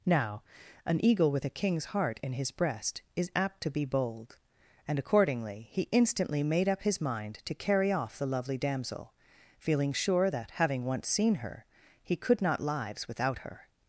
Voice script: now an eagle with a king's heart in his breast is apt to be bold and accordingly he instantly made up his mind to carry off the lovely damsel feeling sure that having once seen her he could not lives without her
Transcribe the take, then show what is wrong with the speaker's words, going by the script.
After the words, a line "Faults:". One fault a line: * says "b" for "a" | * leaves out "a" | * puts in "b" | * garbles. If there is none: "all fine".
now an eagle with a king's heart in his breast is apt to be bold and accordingly he instantly made up his mind to carry off the lovely damsel feeling sure that having once seen her he could not lives without her
Faults:
all fine